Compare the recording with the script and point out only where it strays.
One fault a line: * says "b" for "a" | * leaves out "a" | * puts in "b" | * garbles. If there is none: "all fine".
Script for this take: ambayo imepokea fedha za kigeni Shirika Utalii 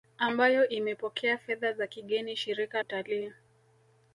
all fine